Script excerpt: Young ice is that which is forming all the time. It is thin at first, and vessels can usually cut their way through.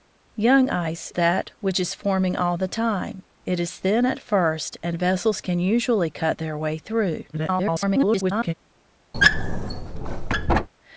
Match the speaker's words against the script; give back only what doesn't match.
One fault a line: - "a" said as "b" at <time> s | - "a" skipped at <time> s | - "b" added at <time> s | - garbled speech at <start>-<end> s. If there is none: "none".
- "is" skipped at 1.1 s
- garbled speech at 7.3-8.5 s